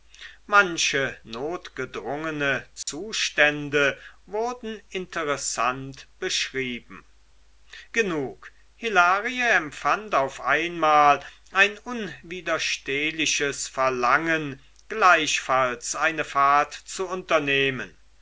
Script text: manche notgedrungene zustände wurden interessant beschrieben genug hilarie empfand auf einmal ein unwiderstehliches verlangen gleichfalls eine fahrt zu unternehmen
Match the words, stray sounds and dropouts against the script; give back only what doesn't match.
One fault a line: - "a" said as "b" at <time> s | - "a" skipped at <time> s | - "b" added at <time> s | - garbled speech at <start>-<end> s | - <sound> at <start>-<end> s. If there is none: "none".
- dropout at 2.8-2.9 s